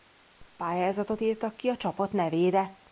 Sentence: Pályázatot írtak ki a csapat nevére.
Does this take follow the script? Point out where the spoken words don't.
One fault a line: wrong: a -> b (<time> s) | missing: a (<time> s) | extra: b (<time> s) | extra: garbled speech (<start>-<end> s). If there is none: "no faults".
no faults